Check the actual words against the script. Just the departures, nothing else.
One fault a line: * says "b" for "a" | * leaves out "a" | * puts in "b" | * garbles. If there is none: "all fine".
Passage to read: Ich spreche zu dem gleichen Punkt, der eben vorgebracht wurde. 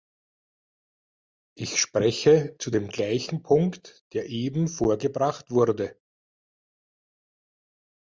all fine